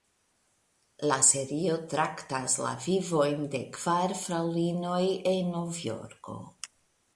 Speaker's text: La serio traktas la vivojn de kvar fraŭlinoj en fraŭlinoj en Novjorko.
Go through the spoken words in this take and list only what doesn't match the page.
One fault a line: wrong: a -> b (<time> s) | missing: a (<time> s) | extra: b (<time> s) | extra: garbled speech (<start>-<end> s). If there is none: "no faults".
missing: fraŭlinoj en (5.5 s)